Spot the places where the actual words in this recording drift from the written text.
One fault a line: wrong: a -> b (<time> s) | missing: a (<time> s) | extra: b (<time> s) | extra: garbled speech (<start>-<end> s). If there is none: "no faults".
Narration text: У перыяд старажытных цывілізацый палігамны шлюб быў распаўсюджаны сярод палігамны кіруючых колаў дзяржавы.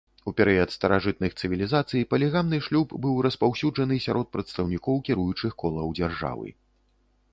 wrong: палігамны -> прадстаўнікоў (4.4 s)